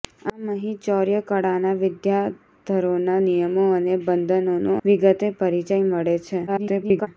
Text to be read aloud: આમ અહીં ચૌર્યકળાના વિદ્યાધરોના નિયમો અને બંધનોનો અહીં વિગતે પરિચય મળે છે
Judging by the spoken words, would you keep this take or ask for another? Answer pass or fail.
fail